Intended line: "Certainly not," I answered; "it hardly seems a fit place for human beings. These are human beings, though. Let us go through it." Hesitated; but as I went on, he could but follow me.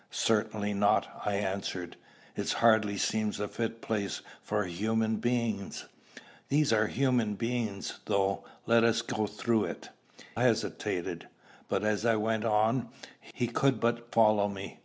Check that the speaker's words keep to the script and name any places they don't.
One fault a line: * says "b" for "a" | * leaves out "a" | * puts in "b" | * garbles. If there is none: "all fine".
all fine